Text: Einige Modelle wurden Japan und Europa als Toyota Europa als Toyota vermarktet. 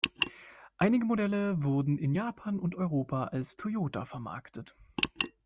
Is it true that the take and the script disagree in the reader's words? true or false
true